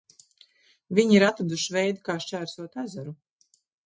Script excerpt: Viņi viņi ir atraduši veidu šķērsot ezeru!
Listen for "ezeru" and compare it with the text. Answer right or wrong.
right